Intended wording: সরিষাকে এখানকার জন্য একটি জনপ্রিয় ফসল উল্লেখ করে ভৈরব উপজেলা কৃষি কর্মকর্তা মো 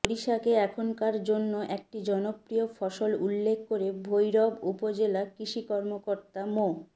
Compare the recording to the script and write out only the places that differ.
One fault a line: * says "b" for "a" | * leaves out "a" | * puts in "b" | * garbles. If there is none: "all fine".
all fine